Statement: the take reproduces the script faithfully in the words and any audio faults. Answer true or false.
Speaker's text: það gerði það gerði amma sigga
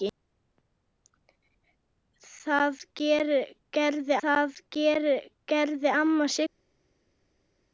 true